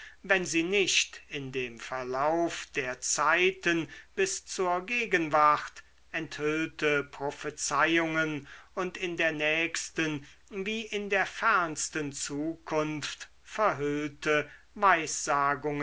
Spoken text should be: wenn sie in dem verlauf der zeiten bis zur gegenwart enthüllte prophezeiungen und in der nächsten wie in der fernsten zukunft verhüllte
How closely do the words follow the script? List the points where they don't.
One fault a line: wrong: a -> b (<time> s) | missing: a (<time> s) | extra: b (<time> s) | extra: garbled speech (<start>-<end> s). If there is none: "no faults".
extra: nicht (0.6 s)